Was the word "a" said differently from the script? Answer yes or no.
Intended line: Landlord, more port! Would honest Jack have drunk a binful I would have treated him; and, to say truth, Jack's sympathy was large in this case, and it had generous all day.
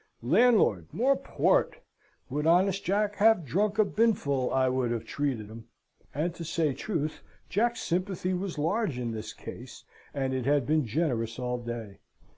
no